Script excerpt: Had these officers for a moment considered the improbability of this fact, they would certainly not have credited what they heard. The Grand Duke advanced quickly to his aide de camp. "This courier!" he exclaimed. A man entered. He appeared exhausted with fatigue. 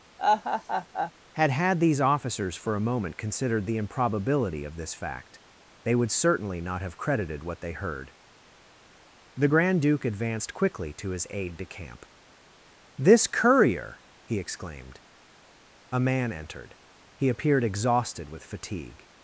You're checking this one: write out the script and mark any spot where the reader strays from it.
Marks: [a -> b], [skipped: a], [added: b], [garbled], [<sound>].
[laugh] Had [added: had] these officers for a moment considered the improbability of this fact, they would certainly not have credited what they heard. The Grand Duke advanced quickly to his aide de camp. "This courier!" he exclaimed. A man entered. He appeared exhausted with fatigue.